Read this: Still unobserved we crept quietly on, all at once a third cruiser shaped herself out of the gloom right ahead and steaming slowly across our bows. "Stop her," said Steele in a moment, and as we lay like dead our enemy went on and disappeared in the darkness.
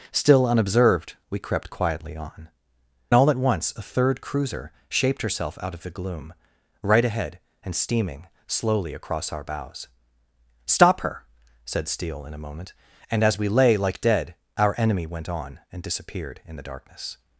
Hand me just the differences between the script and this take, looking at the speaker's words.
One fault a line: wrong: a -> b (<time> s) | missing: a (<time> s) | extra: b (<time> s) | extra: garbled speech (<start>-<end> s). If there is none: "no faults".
no faults